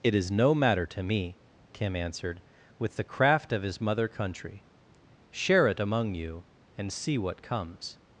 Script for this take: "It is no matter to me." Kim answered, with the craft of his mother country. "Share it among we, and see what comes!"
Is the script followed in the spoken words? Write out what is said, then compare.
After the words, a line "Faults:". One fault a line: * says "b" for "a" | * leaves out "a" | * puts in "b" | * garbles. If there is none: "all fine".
"It is no matter to me." Kim answered, with the craft of his mother country. "Share it among you, and see what comes!"
Faults:
* says "you" for "we"